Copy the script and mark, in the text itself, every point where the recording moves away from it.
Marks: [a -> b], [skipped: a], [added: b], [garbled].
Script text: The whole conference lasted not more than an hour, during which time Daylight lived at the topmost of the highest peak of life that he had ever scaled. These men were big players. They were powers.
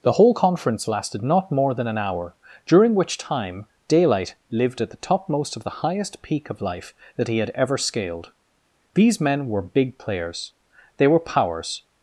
The whole conference lasted not more than an hour, during which time Daylight lived at the topmost of the highest peak of life that he had ever scaled. These men were big players. They were powers.